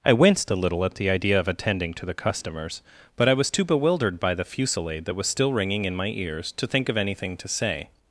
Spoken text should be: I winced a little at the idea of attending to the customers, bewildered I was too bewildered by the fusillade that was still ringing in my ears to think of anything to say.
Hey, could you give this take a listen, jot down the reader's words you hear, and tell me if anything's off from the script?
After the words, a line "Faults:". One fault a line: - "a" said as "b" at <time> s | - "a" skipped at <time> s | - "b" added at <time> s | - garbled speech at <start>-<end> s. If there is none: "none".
I winced a little at the idea of attending to the customers, but I was too bewildered by the fusillade that was still ringing in my ears to think of anything to say.
Faults:
- "bewildered" said as "but" at 3.1 s